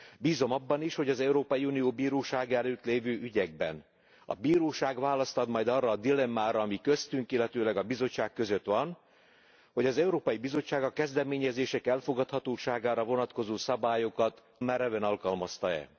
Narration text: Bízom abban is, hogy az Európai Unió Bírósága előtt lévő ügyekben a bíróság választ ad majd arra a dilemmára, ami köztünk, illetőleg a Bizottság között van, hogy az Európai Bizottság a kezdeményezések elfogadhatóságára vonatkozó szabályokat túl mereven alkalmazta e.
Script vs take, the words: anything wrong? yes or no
yes